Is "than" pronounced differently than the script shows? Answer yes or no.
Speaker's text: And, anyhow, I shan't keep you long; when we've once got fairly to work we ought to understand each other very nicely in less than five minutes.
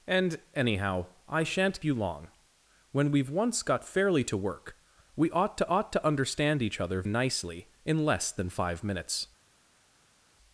no